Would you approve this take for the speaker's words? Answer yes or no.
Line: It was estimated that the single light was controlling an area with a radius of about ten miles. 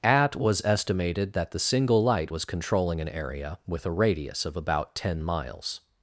no